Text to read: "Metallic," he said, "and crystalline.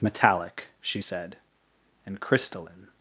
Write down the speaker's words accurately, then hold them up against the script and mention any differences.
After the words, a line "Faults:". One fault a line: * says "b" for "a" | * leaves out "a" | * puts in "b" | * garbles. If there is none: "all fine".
"Metallic," she said, "and crystalline.
Faults:
* says "she" for "he"